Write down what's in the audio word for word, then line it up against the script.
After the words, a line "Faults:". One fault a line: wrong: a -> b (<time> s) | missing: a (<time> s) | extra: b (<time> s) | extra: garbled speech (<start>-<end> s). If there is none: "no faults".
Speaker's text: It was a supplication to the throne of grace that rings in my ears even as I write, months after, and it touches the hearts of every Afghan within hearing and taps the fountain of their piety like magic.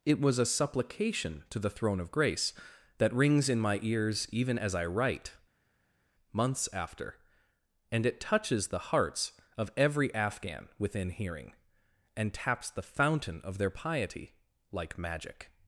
It was a supplication to the throne of grace that rings in my ears even as I write, months after, and it touches the hearts of every Afghan within hearing and taps the fountain of their piety like magic.
Faults:
no faults